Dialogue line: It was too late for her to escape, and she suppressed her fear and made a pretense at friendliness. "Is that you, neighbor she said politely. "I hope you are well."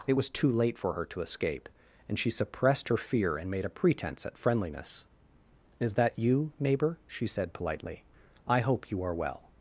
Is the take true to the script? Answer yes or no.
yes